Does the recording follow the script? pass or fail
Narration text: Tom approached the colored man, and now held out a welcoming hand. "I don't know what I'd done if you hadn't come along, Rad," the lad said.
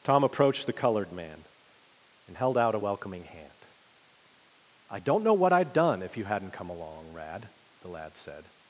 fail